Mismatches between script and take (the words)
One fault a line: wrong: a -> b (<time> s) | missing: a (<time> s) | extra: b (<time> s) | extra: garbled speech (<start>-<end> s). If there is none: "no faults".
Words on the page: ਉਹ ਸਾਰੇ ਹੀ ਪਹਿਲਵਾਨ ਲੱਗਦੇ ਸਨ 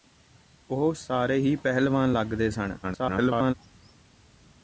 extra: garbled speech (2.8-3.5 s)